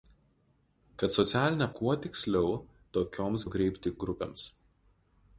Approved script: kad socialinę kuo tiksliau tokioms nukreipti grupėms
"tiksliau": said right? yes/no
yes